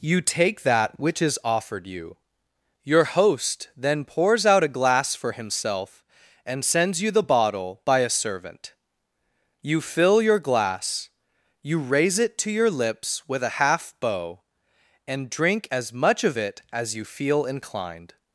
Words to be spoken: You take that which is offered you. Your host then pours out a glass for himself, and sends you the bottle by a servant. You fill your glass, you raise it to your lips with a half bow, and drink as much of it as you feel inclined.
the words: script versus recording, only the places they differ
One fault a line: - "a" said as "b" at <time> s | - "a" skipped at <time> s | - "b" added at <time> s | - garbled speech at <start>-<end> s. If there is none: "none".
none